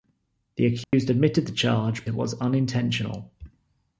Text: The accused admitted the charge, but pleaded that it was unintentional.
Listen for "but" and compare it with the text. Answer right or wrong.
wrong